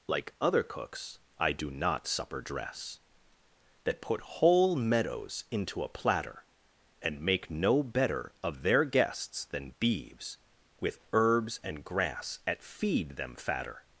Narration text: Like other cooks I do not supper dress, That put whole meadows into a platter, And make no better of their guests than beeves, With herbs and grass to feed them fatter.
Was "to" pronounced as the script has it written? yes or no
no